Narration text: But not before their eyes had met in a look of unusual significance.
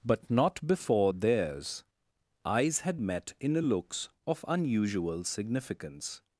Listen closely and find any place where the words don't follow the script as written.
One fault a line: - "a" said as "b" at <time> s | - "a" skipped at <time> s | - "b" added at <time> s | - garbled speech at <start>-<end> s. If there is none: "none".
- "their" said as "theirs" at 1.1 s
- "look" said as "looks" at 3.6 s